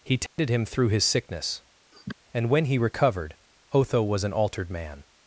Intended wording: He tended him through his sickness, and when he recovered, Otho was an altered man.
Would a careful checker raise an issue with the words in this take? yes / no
no